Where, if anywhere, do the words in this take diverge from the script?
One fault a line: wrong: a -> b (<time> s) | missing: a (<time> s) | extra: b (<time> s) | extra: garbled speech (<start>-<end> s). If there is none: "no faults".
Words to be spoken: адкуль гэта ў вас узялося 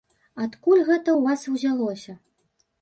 no faults